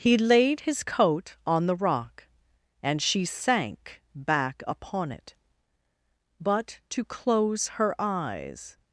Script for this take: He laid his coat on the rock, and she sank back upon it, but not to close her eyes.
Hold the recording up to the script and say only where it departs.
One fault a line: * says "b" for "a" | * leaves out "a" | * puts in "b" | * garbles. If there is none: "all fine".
* leaves out "not"